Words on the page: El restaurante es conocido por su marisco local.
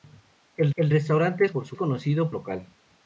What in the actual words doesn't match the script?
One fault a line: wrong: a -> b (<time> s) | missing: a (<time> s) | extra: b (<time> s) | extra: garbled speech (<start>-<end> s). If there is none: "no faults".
extra: el (0.8 s)
missing: conocido (1.5 s)
wrong: marisco -> conocido (1.7 s)